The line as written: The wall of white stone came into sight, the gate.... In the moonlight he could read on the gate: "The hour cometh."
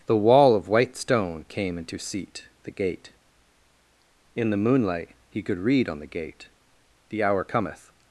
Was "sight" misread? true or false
true